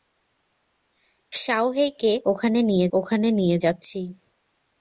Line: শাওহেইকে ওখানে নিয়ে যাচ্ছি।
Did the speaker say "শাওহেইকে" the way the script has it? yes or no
yes